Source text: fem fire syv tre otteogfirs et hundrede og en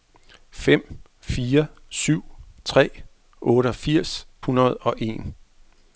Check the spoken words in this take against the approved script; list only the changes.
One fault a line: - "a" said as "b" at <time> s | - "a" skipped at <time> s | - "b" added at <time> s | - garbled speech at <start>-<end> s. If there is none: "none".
- "et" skipped at 4.3 s